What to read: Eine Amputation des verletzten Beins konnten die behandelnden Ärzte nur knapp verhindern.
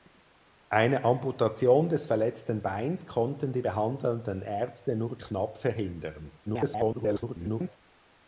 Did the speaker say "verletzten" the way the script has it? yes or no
yes